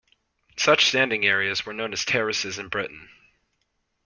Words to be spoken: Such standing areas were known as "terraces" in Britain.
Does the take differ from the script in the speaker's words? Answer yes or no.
no